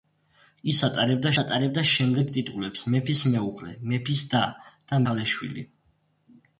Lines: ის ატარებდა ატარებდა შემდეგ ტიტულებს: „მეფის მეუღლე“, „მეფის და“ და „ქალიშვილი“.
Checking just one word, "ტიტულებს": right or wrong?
right